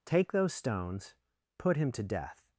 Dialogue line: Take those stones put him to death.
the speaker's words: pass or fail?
pass